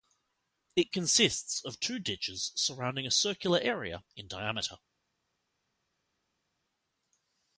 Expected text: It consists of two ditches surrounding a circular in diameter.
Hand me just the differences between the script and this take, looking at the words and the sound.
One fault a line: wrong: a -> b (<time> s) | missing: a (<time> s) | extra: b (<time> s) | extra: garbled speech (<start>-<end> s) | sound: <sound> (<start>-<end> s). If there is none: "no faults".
extra: area (3.6 s)